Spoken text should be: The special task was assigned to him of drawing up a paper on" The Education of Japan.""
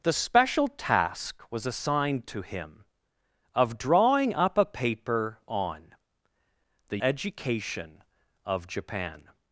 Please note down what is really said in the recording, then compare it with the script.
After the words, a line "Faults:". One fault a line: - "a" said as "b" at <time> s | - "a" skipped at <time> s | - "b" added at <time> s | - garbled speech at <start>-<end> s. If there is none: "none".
The special task was assigned to him of drawing up a paper on" The Education of Japan.""
Faults:
none